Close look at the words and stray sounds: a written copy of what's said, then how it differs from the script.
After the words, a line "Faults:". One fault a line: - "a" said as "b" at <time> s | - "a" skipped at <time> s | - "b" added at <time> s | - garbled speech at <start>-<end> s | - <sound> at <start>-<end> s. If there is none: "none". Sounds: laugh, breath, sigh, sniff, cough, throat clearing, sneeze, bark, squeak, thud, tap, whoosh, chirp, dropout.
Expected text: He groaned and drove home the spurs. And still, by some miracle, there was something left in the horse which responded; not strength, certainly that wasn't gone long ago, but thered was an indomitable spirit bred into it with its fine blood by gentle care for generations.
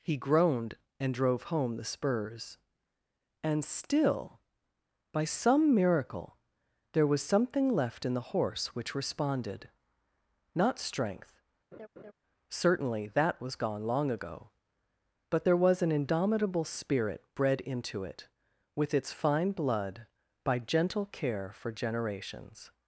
He groaned and drove home the spurs. And still, by some miracle, there was something left in the horse which responded; not strength, certainly that was gone long ago, but there was an indomitable spirit bred into it with its fine blood by gentle care for generations.
Faults:
- laugh at 11.7-12.1 s
- "wasn't" said as "was" at 13.4 s
- "thered" said as "there" at 15.4 s